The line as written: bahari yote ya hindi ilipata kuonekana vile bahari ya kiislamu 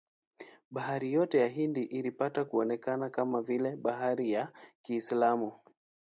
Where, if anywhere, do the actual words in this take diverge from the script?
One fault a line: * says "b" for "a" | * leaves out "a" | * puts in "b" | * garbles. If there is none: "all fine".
* puts in "kama"